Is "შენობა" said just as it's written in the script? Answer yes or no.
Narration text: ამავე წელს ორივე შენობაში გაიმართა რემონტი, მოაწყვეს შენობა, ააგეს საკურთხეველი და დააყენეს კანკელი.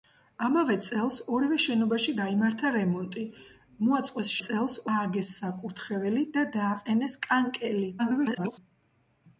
no